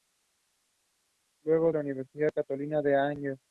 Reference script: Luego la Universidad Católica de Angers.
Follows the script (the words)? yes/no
yes